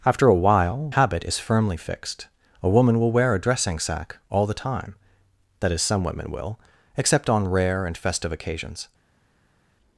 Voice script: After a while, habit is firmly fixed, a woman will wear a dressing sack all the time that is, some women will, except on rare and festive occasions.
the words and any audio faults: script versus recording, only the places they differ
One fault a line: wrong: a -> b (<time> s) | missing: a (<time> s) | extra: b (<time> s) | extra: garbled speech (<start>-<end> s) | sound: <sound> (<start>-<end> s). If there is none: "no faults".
no faults